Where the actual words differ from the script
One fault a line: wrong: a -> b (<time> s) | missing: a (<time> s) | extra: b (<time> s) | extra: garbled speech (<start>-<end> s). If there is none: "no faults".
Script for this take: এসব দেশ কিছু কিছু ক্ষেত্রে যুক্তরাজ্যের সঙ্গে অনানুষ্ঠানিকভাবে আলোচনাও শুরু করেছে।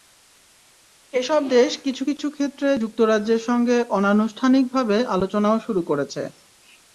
no faults